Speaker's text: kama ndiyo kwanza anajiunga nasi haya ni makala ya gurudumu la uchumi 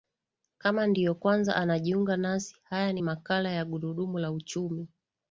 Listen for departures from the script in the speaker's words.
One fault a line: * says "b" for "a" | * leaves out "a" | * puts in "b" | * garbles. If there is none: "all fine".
all fine